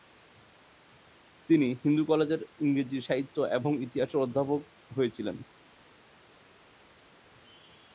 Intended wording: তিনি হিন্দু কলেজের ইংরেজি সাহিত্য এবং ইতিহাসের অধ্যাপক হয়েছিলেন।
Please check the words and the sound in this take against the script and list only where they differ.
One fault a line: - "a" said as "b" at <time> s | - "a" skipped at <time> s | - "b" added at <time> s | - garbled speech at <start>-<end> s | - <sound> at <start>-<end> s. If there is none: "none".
none